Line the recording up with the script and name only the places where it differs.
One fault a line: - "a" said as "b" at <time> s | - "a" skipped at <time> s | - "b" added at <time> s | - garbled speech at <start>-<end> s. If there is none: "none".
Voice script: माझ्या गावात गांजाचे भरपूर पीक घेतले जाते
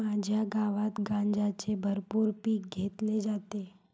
none